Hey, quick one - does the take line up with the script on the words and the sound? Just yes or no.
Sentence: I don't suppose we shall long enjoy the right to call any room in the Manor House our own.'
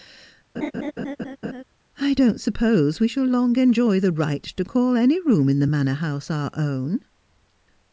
no